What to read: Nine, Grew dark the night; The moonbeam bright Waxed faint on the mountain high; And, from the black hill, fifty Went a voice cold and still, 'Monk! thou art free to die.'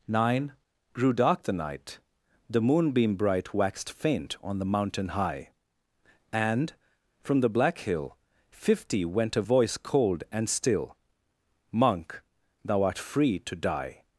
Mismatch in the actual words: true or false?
false